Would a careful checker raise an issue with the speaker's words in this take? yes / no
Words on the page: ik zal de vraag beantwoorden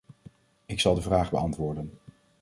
no